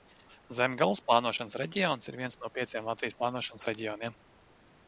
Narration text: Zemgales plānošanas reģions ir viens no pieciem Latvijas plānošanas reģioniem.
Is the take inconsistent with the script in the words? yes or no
no